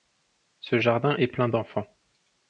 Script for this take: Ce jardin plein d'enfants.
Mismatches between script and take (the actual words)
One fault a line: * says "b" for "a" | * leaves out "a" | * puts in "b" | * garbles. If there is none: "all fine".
* puts in "est"